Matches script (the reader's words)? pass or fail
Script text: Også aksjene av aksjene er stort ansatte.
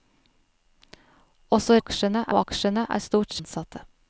pass